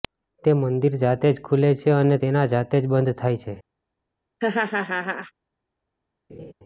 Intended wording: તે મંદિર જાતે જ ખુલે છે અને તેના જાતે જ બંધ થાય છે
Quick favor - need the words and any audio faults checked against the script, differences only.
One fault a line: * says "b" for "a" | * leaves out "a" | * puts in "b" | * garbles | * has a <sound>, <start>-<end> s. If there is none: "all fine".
* has a laugh, 4.4-5.3 s
* has a laugh, 6.3-6.5 s